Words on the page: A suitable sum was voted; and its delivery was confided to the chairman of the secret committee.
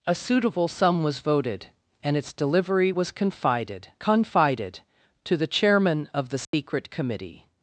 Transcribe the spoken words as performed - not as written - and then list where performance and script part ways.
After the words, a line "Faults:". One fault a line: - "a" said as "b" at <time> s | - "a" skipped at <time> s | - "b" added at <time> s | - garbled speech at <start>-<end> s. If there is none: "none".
A suitable sum was voted; and its delivery was confided confided to the chairman of the secret committee.
Faults:
- "confided" added at 4.0 s